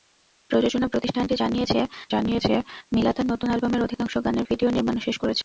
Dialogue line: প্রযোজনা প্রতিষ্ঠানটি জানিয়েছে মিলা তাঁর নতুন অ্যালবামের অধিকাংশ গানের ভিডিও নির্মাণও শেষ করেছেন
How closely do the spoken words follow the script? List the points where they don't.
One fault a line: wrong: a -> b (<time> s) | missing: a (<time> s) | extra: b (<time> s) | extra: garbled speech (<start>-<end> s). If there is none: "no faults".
extra: জানিয়েছে (2.1 s)